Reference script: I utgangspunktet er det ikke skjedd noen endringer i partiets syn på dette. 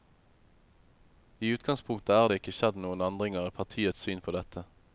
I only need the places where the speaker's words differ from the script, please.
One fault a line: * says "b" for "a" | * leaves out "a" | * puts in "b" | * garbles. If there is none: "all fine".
all fine